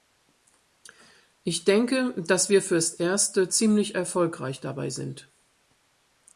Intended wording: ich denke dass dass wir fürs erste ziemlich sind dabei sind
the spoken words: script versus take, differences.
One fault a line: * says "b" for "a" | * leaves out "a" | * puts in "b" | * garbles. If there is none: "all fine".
* leaves out "dass"
* says "erfolgreich" for "sind"